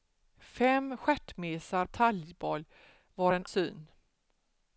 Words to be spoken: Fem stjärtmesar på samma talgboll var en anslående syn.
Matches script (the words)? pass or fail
fail